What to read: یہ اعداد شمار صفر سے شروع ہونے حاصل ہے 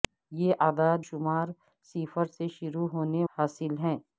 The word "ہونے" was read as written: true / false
true